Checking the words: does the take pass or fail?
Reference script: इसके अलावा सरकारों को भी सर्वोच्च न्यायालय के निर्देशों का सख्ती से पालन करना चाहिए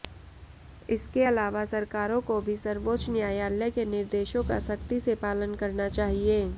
pass